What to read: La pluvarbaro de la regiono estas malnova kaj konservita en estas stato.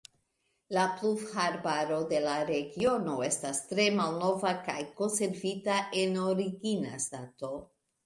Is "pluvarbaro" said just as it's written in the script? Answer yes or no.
yes